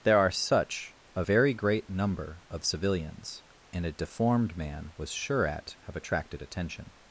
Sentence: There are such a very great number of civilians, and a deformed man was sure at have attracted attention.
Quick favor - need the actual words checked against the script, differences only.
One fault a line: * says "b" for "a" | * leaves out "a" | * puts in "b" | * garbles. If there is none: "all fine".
all fine